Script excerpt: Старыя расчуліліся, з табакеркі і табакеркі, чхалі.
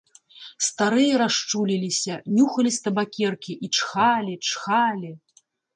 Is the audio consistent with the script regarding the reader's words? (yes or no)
no